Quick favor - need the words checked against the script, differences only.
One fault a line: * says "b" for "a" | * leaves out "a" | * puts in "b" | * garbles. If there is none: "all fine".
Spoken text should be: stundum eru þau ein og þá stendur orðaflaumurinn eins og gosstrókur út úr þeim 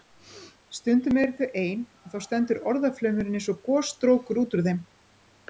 all fine